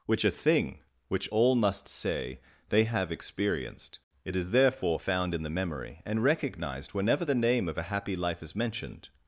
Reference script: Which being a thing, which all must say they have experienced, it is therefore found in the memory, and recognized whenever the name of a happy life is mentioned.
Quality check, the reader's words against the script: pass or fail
fail